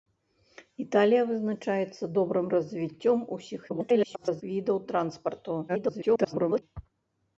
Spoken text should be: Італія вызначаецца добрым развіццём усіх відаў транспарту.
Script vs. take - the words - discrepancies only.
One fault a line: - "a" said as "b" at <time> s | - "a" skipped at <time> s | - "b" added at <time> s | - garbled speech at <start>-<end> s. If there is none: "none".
- garbled speech at 3.7-4.4 s
- garbled speech at 5.7-6.6 s